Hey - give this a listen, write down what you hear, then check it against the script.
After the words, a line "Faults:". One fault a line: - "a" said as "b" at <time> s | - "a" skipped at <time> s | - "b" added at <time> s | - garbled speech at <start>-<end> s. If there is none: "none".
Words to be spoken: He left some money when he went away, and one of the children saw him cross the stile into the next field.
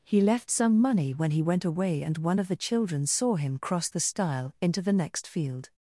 He left some money when he went away, and one of the children saw him cross the stile into the next field.
Faults:
none